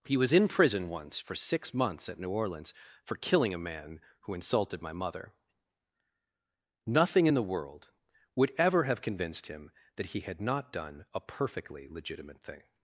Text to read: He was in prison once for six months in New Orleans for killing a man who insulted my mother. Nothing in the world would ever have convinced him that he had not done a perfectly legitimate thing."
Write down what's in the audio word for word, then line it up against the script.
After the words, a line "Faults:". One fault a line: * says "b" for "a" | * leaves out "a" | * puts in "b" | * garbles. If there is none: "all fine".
He was in prison once for six months at New Orleans for killing a man who insulted my mother. Nothing in the world would ever have convinced him that he had not done a perfectly legitimate thing."
Faults:
* says "at" for "in"